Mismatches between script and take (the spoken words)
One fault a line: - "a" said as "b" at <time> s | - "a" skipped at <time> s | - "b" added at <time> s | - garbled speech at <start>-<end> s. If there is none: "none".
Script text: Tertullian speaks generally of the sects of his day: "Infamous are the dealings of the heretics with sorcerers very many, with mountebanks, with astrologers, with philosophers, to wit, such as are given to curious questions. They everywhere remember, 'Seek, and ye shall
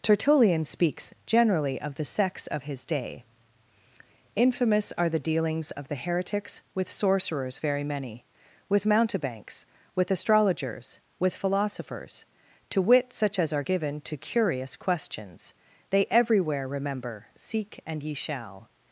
none